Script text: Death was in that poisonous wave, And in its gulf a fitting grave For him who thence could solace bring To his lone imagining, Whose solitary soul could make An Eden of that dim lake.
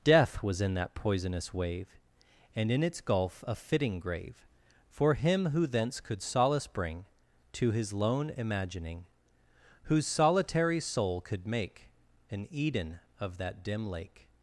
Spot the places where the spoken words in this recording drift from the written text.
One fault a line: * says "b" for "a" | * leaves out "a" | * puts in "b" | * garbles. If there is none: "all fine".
all fine